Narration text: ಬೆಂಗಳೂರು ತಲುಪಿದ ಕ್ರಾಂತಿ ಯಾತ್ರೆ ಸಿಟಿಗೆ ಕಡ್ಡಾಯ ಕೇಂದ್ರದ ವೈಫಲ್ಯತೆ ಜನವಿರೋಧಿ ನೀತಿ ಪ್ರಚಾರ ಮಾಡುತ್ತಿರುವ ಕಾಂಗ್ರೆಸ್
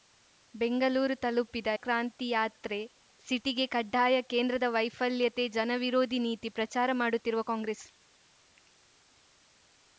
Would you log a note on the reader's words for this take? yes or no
no